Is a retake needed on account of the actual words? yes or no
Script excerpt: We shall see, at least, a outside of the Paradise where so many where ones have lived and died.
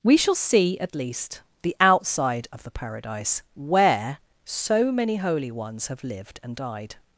yes